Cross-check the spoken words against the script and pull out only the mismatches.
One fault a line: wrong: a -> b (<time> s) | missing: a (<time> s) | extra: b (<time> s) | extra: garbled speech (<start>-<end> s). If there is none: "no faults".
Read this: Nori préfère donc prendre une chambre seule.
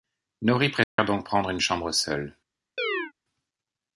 no faults